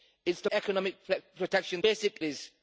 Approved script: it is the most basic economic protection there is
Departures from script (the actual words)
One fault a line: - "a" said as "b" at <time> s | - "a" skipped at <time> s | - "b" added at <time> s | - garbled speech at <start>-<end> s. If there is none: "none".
- "most basic" skipped at 0.5 s
- "there" said as "basic" at 1.8 s